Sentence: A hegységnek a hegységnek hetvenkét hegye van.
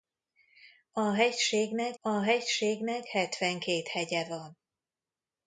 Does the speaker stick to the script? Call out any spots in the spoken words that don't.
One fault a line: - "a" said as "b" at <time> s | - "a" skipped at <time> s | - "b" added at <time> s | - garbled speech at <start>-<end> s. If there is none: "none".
none